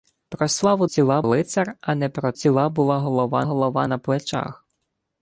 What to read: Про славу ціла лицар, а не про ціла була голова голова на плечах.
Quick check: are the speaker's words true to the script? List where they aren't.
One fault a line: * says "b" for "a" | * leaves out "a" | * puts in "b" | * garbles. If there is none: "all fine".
all fine